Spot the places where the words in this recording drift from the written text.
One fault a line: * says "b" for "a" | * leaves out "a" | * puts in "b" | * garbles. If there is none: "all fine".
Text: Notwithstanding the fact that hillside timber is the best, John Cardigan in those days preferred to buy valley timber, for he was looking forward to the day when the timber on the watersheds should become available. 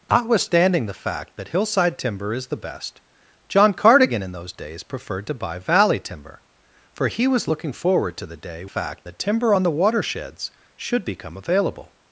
* says "fact" for "when"